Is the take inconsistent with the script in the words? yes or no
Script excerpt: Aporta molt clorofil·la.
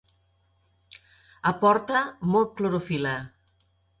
no